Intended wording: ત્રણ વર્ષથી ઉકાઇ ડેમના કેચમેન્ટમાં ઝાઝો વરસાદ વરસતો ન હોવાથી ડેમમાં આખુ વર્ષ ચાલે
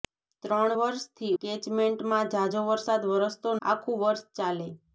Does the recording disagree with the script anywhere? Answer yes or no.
yes